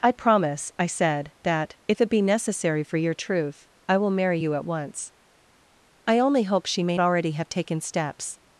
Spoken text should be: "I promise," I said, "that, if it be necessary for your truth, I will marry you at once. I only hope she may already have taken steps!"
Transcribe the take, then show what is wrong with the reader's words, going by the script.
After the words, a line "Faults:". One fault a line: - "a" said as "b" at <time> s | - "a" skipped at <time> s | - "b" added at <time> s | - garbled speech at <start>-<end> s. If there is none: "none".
"I promise," I said, "that, if it be necessary for your truth, I will marry you at once. I only hope she may already have taken steps!"
Faults:
none